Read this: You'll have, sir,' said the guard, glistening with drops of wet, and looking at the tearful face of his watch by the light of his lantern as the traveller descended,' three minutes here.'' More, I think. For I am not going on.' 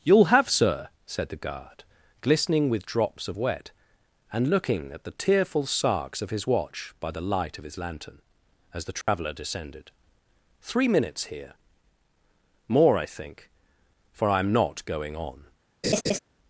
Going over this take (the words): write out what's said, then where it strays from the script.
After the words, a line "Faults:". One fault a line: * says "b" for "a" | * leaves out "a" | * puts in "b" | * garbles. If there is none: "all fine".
You'll have, sir,' said the guard, glistening with drops of wet, and looking at the tearful sarks of his watch by the light of his lantern as the traveller descended,' three minutes here.'' More, I think. For I am not going on.'
Faults:
* says "sarks" for "face"